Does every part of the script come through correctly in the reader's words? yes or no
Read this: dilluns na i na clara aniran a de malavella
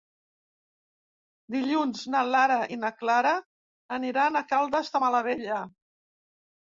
no